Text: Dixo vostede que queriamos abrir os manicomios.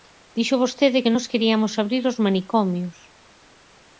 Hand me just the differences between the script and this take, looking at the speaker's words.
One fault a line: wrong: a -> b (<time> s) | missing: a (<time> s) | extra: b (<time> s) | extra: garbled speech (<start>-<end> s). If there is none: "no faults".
extra: nós (1.1 s)